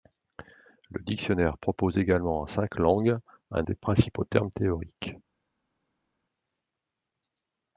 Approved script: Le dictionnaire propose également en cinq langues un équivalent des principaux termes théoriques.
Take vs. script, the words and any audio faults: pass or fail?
fail